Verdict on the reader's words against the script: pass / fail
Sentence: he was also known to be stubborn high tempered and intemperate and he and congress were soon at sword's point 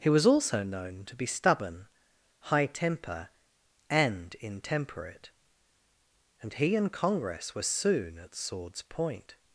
fail